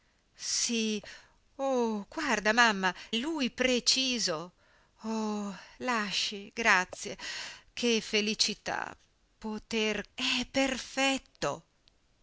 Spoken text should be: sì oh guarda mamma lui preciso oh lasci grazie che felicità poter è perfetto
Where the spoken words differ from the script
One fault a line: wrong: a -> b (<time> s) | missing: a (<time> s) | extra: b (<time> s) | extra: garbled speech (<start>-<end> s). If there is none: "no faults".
no faults